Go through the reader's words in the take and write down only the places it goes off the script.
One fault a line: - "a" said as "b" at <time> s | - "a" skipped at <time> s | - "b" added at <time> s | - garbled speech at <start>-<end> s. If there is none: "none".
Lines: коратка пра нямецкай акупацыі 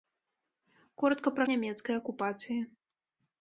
none